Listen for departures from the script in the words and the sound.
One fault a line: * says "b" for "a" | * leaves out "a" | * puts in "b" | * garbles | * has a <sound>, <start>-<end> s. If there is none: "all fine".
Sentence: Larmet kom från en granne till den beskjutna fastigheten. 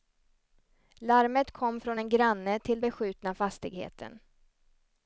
* leaves out "den"